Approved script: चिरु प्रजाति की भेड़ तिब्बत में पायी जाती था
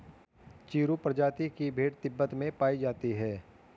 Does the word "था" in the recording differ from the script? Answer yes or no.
yes